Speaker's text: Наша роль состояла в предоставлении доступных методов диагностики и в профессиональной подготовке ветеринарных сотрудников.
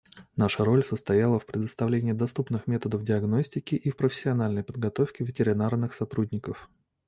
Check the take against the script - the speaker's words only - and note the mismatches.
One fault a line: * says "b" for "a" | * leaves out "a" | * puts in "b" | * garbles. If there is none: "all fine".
all fine